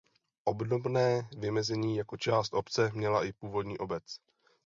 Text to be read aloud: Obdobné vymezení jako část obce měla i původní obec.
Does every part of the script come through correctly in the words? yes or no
yes